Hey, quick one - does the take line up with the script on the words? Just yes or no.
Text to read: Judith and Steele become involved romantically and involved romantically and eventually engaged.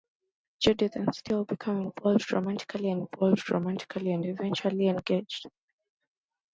yes